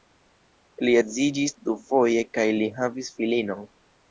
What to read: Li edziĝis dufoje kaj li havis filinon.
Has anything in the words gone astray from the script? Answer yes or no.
no